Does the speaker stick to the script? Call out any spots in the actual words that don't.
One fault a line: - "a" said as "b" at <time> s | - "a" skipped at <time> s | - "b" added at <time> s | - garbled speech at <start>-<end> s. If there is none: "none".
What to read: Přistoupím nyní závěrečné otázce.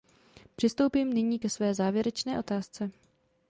- "ke své" added at 1.4 s